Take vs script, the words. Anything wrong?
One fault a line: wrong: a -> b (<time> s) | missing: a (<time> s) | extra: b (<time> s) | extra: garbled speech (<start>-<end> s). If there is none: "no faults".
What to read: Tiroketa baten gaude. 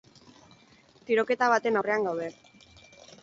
extra: aurrean (1.8 s)